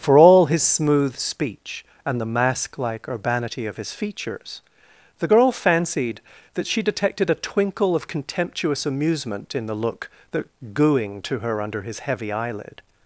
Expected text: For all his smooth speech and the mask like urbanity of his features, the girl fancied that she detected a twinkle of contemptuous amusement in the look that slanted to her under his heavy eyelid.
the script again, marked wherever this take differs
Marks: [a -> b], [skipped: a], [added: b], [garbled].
For all his smooth speech and the mask like urbanity of his features, the girl fancied that she detected a twinkle of contemptuous amusement in the look that [slanted -> gooing] to her under his heavy eyelid.